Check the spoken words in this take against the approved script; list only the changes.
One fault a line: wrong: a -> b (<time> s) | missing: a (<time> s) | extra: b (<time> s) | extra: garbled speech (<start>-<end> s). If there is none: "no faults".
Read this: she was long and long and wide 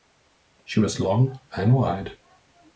missing: long and (1.8 s)